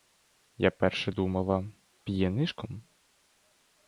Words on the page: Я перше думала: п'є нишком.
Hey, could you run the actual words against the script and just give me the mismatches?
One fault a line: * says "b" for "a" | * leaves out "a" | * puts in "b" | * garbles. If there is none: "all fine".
all fine